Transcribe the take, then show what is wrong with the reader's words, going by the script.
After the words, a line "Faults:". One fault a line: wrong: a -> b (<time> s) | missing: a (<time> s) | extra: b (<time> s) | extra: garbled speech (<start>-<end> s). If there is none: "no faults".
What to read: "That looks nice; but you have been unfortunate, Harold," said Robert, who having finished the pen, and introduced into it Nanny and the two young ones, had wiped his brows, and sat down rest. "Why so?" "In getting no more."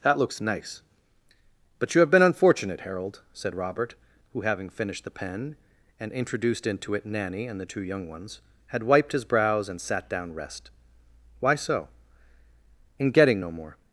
"That looks nice; but you have been unfortunate, Harold," said Robert, who having finished the pen, and introduced into it Nanny and the two young ones, had wiped his brows, and sat down rest. "Why so?" "In getting no more."
Faults:
no faults